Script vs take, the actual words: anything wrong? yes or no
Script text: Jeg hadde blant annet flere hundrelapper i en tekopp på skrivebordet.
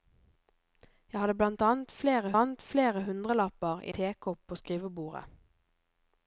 yes